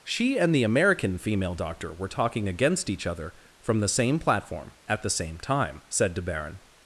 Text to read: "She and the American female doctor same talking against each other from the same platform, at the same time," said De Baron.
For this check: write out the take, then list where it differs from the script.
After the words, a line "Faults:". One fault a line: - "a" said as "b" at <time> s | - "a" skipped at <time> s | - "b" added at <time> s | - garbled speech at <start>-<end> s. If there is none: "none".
"She and the American female doctor were talking against each other from the same platform, at the same time," said De Baron.
Faults:
- "same" said as "were" at 1.9 s